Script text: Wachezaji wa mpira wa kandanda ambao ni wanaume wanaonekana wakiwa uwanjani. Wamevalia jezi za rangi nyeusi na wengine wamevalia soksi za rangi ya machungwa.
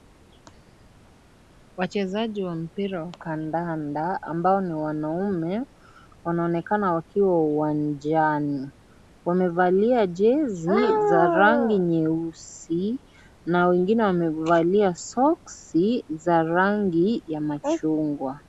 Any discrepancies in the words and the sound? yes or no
no